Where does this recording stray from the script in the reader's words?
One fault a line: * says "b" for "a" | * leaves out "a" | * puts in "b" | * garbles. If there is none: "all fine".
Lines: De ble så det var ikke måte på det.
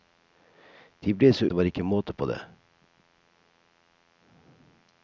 all fine